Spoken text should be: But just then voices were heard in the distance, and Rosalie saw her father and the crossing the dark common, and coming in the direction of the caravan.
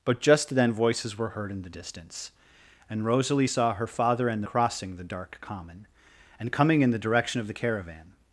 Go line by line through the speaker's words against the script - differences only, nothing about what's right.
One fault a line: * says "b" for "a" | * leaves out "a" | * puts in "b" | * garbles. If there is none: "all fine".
all fine